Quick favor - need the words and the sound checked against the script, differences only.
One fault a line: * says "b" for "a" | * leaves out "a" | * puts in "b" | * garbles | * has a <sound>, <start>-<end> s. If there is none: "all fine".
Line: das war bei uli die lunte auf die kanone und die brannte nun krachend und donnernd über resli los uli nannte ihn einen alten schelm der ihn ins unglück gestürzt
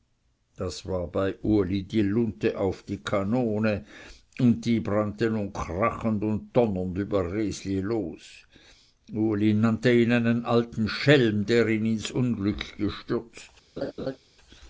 * has a laugh, 13.8-14.2 s